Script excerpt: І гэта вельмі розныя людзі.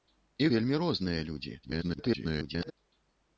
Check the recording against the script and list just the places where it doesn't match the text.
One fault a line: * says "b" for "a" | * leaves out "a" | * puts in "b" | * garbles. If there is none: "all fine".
* leaves out "гэта"
* garbles